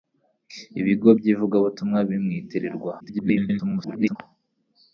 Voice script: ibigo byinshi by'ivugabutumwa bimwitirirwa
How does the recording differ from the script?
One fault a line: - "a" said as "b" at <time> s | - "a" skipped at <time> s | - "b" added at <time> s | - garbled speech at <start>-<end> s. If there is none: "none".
- "byinshi" skipped at 1.1 s
- garbled speech at 3.0-4.2 s